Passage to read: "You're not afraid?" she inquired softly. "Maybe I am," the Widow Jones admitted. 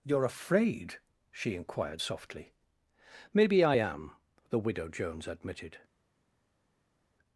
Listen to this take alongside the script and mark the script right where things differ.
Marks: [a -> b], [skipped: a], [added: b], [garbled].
"You're [skipped: not] afraid?" she inquired softly. "Maybe I am," the Widow Jones admitted.